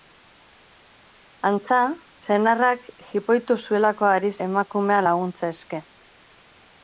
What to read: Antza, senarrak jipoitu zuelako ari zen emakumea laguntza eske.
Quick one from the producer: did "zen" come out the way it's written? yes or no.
no